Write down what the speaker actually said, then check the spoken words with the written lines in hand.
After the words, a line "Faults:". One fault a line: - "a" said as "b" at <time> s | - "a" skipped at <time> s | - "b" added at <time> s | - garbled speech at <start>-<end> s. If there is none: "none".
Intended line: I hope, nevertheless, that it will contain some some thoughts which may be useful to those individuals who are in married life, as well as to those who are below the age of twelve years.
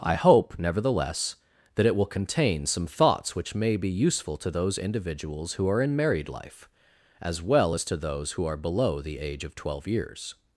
I hope, nevertheless, that it will contain some thoughts which may be useful to those individuals who are in married life, as well as to those who are below the age of twelve years.
Faults:
- "some" skipped at 2.9 s